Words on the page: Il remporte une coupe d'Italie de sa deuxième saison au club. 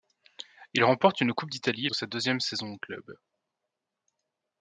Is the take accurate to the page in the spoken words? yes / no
yes